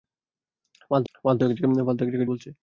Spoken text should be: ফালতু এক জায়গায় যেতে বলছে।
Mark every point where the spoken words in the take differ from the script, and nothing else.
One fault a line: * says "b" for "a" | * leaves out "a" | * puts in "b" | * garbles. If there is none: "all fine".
* puts in "ফালতু"
* leaves out "যেতে"